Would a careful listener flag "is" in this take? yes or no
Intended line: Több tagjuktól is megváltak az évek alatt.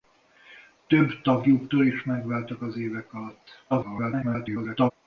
no